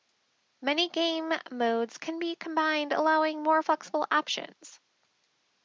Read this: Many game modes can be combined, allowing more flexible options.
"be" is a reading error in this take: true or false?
false